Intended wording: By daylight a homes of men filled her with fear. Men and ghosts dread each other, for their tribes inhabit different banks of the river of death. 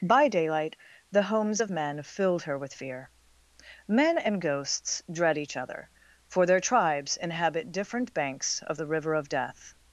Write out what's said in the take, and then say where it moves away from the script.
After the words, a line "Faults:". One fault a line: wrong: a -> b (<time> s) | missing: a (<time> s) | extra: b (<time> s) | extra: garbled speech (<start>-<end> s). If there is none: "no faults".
By daylight the homes of men filled her with fear. Men and ghosts dread each other, for their tribes inhabit different banks of the river of death.
Faults:
wrong: a -> the (1.1 s)